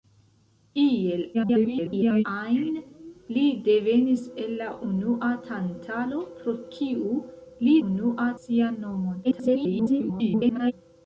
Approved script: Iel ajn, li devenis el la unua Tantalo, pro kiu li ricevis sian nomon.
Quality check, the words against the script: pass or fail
fail